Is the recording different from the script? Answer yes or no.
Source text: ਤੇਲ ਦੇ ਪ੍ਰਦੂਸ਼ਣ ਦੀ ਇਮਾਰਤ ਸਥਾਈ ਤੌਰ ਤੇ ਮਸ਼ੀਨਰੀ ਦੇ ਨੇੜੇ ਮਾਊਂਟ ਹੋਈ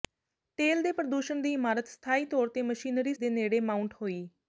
no